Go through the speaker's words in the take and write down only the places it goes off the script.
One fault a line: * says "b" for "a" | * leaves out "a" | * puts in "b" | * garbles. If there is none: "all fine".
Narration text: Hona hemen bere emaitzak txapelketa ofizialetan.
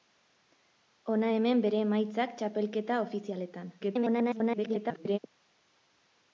* garbles